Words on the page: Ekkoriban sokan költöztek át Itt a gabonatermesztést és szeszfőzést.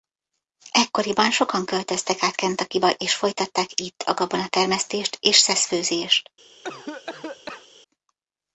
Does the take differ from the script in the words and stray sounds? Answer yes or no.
yes